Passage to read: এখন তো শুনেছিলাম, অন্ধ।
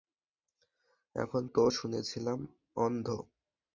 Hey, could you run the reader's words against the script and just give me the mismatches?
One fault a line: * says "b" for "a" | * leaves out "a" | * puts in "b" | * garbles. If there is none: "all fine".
all fine